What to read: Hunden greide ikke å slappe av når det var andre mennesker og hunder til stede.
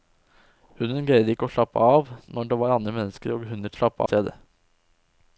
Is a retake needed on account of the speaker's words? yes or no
yes